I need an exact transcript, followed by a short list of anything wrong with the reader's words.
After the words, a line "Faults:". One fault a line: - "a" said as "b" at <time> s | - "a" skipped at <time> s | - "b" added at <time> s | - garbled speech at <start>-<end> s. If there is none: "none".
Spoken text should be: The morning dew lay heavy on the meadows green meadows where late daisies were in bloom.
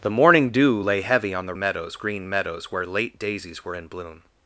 The morning dew lay heavy on the meadows green meadows where late daisies were in bloom.
Faults:
none